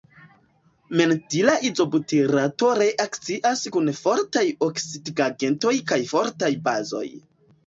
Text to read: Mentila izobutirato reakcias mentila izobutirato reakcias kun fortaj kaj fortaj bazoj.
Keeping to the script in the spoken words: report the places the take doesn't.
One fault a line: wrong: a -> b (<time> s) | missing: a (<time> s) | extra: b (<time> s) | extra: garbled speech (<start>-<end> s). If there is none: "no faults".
missing: mentila izobutirato reakcias (3.6 s)
extra: oksidigagentoj (4.7 s)